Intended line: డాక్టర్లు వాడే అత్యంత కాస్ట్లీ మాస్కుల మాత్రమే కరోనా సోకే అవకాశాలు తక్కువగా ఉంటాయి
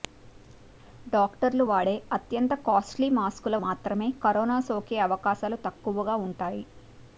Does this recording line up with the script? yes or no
yes